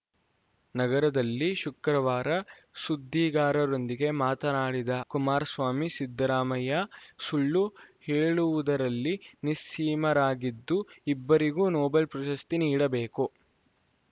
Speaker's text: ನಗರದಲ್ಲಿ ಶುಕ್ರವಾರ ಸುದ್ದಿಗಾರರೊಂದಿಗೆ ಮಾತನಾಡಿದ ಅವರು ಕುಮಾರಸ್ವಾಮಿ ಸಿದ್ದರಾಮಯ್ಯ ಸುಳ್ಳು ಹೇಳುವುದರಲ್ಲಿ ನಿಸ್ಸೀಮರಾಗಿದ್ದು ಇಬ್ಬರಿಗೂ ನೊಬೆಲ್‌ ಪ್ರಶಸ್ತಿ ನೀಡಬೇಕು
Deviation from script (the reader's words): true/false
true